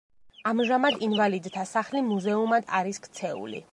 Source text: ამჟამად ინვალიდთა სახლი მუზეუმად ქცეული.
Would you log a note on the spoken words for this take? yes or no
yes